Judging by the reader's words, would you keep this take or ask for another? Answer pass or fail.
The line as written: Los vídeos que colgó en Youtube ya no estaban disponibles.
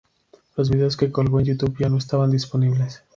pass